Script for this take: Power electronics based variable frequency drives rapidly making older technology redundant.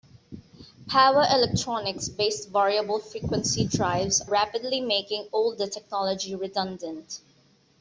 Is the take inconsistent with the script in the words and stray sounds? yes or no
no